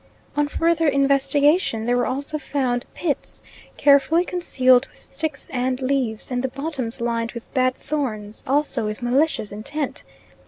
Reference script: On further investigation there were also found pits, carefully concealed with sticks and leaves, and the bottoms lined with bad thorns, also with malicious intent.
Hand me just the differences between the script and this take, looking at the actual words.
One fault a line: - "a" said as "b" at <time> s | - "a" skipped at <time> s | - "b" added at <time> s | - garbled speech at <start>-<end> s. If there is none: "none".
none